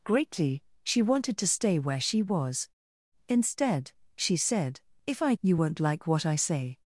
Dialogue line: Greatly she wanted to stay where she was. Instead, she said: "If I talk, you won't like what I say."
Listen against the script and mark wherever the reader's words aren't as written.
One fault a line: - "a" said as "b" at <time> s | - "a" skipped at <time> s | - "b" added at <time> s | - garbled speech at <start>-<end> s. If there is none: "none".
- "talk" skipped at 5.3 s